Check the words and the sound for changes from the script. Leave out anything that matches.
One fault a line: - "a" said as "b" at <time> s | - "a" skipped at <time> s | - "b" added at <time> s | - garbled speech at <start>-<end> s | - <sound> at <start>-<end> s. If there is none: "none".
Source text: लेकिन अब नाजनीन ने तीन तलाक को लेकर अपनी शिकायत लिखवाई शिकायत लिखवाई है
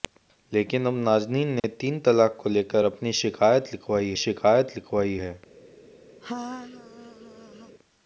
- dropout at 1.6-1.6 s
- laugh at 6.2-7.8 s